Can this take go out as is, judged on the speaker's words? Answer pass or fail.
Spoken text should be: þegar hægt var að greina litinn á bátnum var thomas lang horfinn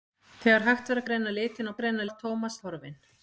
fail